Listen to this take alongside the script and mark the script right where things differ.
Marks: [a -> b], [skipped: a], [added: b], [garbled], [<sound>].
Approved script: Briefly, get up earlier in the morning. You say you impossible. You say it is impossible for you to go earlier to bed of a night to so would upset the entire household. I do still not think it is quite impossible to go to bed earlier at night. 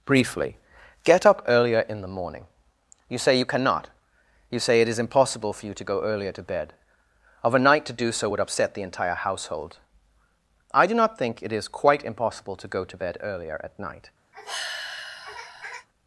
Briefly, get up earlier in the morning. You say you [impossible. -> cannot] You say it is impossible for you to go earlier to bed of a night to [added: do] so would upset the entire household. I do [skipped: still] not think it is quite impossible to go to bed earlier at night. [sigh]